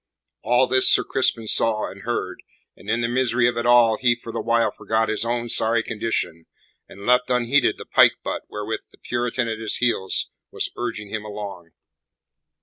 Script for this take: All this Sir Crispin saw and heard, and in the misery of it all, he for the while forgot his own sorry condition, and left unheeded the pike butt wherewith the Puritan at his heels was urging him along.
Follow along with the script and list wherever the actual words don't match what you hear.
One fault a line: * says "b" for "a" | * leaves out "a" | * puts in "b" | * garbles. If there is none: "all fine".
all fine